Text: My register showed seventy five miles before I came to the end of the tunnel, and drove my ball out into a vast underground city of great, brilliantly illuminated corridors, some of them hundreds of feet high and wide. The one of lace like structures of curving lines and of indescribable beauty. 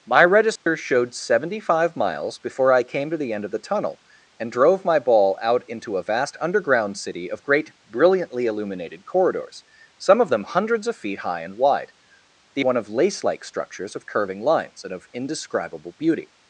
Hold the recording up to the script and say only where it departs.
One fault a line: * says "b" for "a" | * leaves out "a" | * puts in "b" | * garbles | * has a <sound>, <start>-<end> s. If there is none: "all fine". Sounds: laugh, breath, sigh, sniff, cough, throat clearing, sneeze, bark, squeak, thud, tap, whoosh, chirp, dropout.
* has a dropout, 0.6-0.7 s